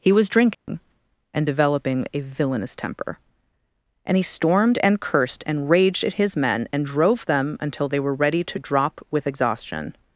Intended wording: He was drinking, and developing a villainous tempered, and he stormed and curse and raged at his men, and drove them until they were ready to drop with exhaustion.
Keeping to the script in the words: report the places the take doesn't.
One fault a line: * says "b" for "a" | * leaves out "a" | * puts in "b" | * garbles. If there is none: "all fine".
* says "temper" for "tempered"
* says "cursed" for "curse"